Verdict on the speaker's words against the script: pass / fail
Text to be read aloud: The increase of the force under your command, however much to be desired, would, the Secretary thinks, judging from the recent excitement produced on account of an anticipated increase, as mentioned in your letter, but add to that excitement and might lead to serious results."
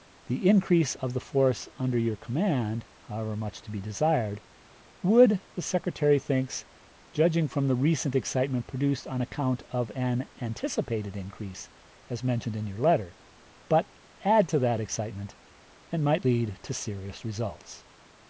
pass